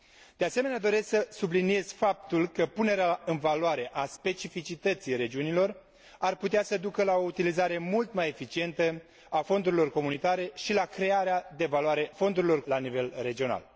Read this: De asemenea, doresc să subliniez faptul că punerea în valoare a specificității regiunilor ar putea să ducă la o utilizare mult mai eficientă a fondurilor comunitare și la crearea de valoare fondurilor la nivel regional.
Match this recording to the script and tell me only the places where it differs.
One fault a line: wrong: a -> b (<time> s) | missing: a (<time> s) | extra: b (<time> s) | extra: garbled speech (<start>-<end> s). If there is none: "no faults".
no faults